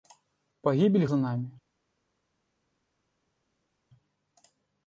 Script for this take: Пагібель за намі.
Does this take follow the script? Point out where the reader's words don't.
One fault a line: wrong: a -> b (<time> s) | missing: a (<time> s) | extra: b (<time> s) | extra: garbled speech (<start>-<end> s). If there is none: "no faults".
no faults